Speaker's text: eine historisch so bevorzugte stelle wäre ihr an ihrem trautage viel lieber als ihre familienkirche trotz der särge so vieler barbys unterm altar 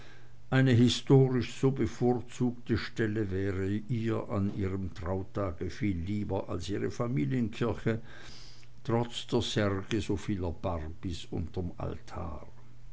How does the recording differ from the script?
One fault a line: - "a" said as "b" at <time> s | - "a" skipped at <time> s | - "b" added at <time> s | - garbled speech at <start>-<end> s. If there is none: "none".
none